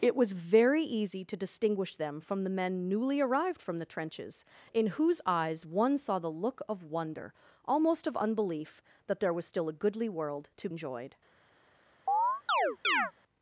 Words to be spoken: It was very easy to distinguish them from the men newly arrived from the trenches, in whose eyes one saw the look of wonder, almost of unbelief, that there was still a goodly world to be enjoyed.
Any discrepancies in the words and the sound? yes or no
yes